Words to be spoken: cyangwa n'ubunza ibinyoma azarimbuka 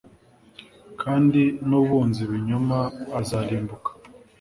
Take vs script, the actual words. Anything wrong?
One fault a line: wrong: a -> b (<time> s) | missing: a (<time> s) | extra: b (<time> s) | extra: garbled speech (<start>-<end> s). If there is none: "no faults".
wrong: cyangwa -> kandi (1.0 s)